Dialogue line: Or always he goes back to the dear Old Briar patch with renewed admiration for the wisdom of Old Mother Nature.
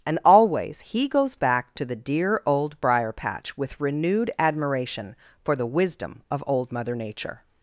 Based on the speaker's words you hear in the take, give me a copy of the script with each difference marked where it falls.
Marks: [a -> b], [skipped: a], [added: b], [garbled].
[Or -> And] always he goes back to the dear Old Briar patch with renewed admiration for the wisdom of Old Mother Nature.